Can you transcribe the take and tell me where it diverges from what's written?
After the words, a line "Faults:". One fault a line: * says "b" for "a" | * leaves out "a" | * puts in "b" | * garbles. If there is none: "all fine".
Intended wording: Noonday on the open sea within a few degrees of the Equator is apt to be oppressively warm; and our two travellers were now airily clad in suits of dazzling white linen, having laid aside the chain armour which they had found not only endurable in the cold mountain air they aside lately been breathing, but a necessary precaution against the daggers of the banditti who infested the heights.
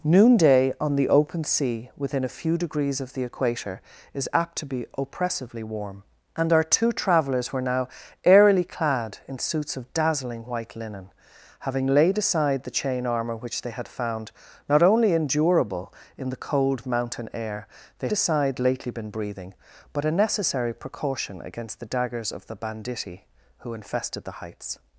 Noonday on the open sea within a few degrees of the Equator is apt to be oppressively warm; and our two travellers were now airily clad in suits of dazzling white linen, having laid aside the chain armour which they had found not only endurable in the cold mountain air they aside lately been breathing, but a necessary precaution against the daggers of the banditti who infested the heights.
Faults:
all fine